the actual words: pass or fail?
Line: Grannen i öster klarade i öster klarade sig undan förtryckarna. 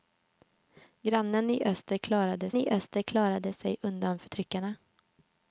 pass